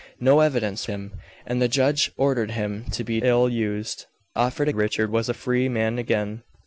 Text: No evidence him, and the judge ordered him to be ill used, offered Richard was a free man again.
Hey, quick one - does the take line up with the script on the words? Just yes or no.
yes